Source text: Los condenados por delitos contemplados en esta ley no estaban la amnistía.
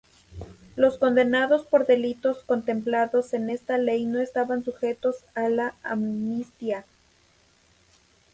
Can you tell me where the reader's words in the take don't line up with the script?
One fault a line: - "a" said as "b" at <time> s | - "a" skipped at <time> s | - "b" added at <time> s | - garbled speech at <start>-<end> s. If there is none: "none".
- "sujetos a" added at 4.6 s